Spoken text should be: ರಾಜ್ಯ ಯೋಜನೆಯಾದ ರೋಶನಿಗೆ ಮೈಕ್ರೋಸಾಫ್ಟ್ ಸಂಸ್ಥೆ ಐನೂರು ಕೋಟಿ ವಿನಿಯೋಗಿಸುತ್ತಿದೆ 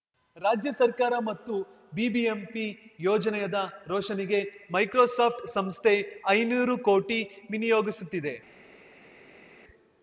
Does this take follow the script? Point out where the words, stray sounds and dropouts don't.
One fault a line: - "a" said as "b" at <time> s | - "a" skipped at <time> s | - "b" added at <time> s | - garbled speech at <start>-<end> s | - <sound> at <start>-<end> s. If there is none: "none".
- "ಸರ್ಕಾರ ಮತ್ತು ಬಿಬಿಎಂಪಿ" added at 0.7 s